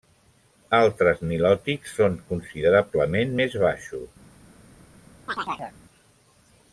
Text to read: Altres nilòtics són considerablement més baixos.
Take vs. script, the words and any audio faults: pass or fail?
fail